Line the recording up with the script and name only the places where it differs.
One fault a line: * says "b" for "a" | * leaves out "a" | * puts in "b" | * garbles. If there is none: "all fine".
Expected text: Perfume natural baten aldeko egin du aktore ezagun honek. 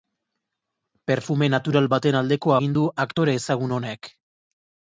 all fine